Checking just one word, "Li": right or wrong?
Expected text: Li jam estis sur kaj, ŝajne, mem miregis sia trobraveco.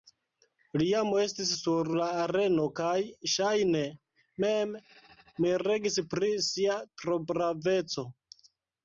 right